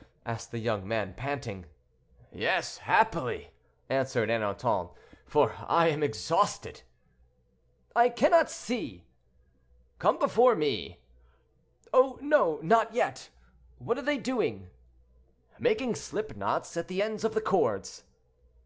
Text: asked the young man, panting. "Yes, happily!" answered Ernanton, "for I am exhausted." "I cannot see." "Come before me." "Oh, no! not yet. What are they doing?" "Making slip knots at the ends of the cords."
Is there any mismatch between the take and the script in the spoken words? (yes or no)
no